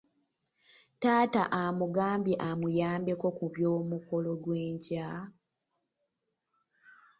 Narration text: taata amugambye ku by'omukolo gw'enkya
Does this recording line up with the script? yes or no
no